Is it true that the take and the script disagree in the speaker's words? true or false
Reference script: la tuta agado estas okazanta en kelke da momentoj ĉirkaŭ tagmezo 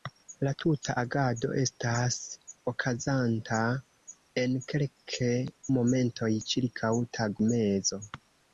true